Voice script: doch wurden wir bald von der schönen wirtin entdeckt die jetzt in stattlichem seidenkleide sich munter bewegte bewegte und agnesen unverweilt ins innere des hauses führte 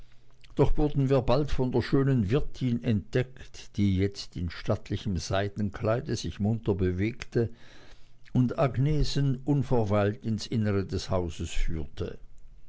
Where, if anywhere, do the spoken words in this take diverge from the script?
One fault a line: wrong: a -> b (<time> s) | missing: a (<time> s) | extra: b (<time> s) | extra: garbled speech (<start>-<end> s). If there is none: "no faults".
missing: bewegte (7.5 s)